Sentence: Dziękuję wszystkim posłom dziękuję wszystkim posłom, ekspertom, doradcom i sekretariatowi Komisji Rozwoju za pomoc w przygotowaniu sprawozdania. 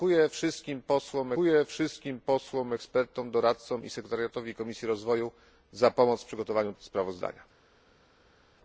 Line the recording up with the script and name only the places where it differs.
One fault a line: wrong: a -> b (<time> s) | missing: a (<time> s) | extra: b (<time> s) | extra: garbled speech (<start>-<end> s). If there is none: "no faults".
no faults